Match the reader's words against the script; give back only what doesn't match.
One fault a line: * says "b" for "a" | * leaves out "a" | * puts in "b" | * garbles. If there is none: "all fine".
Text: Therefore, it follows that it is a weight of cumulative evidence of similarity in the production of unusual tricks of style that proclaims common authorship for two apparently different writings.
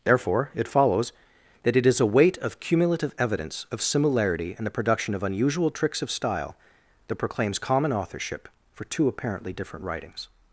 all fine